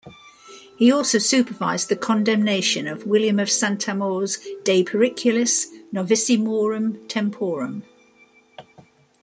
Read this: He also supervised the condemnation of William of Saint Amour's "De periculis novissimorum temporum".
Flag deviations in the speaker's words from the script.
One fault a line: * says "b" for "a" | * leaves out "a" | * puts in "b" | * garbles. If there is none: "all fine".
all fine